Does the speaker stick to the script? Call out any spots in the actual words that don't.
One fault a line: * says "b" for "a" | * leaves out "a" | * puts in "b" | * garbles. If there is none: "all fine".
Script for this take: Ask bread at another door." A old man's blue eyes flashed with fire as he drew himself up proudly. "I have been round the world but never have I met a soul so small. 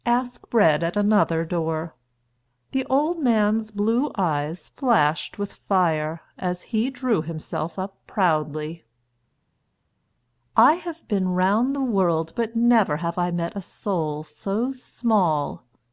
* says "The" for "A"